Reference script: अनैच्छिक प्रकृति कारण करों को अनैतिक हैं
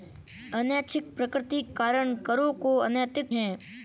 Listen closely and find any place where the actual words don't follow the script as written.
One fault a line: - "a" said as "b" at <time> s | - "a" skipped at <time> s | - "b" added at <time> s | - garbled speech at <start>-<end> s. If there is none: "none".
none